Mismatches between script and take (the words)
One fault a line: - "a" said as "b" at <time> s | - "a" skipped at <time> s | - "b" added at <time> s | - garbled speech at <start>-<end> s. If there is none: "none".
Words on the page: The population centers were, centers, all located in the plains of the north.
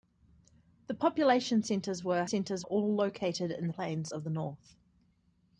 none